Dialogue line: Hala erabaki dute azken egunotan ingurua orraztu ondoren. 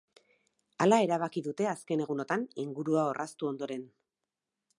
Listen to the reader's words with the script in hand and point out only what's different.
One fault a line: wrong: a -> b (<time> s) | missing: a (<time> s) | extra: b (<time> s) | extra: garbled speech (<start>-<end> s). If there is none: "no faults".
no faults